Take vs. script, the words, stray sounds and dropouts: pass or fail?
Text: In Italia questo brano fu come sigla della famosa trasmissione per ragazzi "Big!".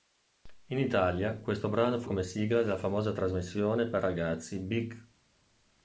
pass